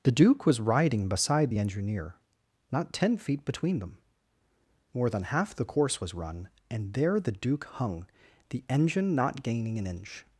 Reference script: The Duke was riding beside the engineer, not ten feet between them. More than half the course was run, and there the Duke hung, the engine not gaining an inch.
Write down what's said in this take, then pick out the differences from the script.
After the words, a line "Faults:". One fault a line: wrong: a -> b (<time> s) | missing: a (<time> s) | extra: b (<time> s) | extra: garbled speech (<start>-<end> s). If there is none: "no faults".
The Duke was riding beside the engineer, not ten feet between them. More than half the course was run, and there the Duke hung, the engine not gaining an inch.
Faults:
no faults